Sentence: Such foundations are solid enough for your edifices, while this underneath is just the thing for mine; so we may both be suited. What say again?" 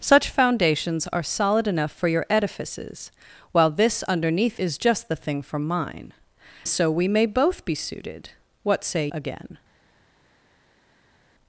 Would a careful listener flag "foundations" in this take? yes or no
no